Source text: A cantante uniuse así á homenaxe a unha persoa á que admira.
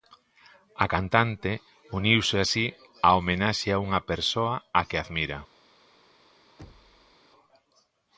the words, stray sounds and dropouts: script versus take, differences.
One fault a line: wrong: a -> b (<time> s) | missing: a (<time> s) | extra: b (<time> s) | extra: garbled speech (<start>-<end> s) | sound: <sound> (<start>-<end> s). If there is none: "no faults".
sound: thud (6.6-7.2 s)